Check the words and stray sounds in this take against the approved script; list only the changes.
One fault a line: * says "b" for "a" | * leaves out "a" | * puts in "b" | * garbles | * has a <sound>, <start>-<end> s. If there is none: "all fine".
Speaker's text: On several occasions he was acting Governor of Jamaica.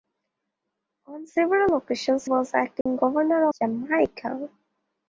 * leaves out "he"
* has a dropout, 2.8-2.9 s
* leaves out "of"